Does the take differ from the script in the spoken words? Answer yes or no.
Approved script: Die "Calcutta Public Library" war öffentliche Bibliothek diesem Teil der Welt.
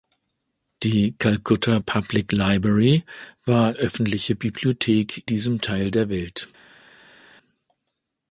no